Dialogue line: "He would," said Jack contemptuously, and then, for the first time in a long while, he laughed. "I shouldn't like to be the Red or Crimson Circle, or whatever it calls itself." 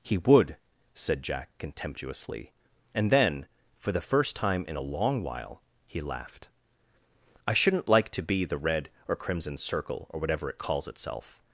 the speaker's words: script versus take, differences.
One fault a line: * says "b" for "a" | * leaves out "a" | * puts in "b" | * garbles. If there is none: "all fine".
all fine